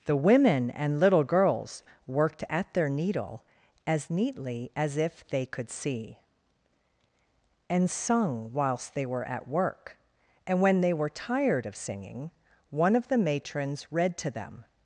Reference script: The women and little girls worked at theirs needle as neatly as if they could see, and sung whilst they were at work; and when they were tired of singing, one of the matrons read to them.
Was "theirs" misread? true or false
true